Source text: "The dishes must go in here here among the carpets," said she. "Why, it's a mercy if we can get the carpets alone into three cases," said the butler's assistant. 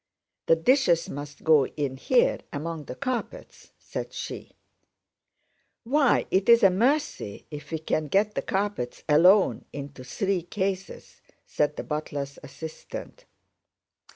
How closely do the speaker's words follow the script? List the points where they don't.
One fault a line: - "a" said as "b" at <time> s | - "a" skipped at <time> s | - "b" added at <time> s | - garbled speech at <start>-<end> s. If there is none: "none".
- "here" skipped at 2.4 s